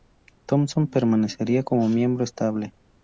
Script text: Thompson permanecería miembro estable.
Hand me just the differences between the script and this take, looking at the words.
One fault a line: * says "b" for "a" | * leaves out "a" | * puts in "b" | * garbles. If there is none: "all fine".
* puts in "como"